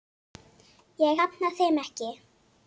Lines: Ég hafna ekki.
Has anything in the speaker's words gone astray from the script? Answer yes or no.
yes